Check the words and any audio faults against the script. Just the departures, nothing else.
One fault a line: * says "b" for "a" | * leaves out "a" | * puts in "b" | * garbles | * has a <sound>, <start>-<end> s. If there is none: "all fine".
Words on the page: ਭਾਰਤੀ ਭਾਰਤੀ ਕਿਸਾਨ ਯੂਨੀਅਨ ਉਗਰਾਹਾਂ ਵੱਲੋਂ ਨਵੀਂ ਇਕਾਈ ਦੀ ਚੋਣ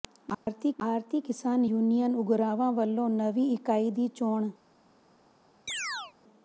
* has a dropout, 0.3-0.5 s
* has a chirp, 5.7-6.1 s